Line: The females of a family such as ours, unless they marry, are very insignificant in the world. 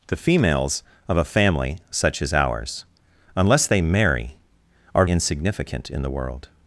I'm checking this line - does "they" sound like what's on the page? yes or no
yes